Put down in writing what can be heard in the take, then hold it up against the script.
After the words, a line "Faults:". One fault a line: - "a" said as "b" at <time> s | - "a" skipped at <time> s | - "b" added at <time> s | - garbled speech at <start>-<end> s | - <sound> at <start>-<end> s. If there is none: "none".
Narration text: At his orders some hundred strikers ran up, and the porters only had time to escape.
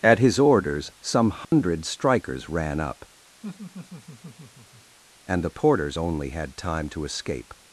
At his orders some hundred strikers ran up, and the porters only had time to escape.
Faults:
- dropout at 1.4-1.5 s
- laugh at 3.4-5.0 s